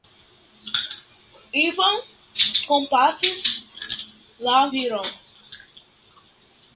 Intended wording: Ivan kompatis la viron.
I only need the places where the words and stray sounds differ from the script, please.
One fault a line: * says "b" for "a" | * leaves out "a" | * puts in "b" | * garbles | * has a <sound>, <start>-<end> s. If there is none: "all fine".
all fine